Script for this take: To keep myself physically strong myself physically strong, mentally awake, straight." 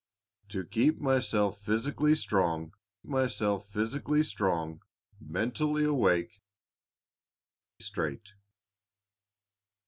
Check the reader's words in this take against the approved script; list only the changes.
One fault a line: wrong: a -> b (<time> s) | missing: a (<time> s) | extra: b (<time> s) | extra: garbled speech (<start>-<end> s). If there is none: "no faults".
no faults